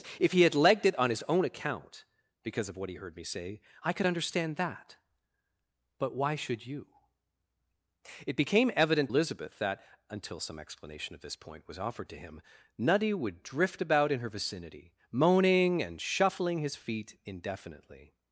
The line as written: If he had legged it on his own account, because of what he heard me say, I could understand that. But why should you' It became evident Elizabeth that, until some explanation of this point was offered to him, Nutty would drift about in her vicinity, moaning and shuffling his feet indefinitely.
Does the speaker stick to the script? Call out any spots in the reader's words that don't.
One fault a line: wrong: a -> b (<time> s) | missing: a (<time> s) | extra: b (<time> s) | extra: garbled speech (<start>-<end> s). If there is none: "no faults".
no faults